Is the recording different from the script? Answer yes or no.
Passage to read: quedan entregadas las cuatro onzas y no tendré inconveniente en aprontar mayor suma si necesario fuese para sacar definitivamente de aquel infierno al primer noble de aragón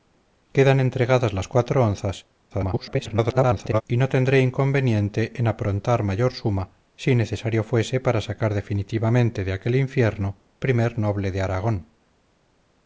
yes